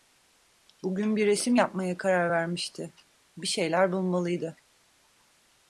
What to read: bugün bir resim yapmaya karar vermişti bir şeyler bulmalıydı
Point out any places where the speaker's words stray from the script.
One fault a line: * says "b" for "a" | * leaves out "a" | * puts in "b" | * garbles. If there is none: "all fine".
all fine